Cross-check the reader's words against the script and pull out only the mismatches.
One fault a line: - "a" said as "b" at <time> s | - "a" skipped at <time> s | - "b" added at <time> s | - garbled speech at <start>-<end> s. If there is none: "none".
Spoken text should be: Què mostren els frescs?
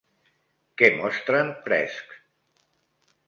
- "els" skipped at 1.5 s